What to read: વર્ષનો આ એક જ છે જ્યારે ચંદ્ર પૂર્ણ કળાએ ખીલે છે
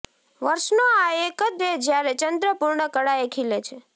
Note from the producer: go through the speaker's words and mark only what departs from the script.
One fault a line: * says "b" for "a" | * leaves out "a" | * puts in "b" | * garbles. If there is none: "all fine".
all fine